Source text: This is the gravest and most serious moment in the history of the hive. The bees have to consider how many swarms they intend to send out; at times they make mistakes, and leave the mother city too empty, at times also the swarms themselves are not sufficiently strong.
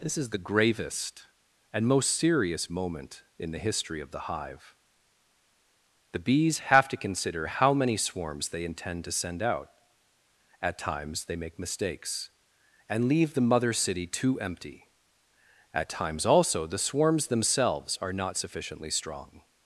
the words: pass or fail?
pass